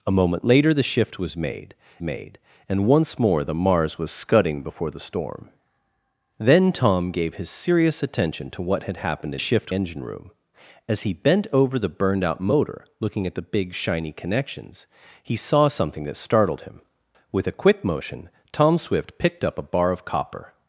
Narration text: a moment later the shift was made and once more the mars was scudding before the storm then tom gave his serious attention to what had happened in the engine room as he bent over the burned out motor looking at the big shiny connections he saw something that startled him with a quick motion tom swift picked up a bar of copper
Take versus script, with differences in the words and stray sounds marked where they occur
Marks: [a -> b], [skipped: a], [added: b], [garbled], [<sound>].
a moment later the shift was made [added: made] and once more the mars was scudding before the storm then tom gave his serious attention to what had happened in [the -> shift] engine room as he bent over the burned out motor looking at the big shiny connections he saw something that startled him with a quick motion tom swift picked up a bar of copper